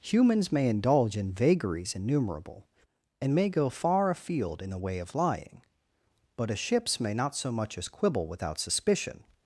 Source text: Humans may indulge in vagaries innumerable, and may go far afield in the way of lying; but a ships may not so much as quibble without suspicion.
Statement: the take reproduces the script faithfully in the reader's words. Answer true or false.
true